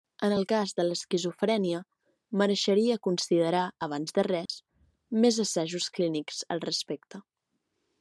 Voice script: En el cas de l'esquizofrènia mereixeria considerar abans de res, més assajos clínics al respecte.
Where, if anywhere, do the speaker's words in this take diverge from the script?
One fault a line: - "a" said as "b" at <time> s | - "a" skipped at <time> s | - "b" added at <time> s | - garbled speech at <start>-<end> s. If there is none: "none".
none